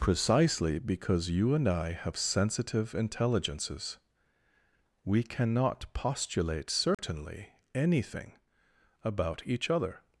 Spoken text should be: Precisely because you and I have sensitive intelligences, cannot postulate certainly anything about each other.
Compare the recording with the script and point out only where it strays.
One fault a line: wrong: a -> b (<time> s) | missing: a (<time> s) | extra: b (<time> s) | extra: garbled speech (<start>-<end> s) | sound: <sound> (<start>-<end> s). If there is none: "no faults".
extra: we (5.0 s)
sound: dropout (6.9-7.0 s)